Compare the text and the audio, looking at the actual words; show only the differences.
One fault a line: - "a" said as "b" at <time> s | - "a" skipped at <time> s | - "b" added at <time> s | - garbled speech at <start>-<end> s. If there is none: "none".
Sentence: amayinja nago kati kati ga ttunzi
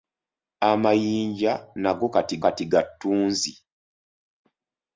none